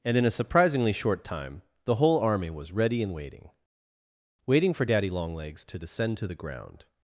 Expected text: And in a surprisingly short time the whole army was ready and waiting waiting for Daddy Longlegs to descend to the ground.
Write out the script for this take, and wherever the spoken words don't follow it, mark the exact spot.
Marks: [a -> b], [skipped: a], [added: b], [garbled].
And in a surprisingly short time the whole army was ready and waiting waiting for Daddy Longlegs to descend to the ground.